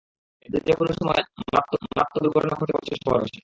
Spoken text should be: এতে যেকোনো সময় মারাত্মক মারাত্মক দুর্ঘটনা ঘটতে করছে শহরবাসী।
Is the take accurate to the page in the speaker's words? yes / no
yes